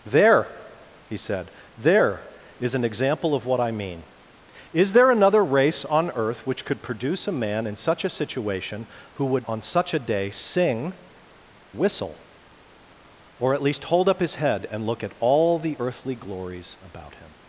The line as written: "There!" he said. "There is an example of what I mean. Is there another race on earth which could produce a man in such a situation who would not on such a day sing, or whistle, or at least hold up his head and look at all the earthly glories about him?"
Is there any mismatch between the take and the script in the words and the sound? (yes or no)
yes